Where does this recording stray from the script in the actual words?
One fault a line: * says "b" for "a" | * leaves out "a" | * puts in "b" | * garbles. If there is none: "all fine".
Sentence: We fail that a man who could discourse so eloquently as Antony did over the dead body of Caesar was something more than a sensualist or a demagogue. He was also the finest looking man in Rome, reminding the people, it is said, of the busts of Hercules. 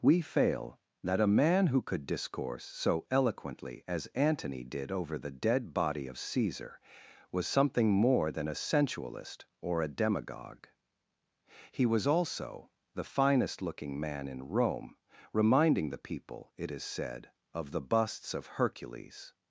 all fine